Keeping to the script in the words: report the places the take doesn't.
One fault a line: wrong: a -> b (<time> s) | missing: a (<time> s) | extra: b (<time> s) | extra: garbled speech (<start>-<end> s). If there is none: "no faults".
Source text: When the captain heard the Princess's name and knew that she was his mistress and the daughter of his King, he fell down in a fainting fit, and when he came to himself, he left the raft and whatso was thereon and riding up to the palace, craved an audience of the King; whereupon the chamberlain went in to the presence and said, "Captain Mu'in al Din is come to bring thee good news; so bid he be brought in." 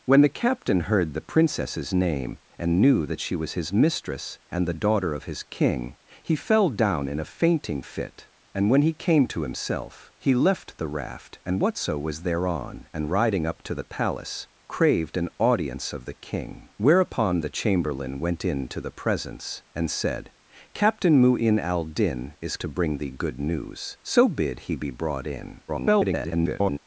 missing: come (22.6 s)
extra: garbled speech (25.7-26.8 s)